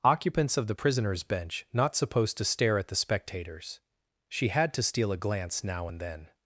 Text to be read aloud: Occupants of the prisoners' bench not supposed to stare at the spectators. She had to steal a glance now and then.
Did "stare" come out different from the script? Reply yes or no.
no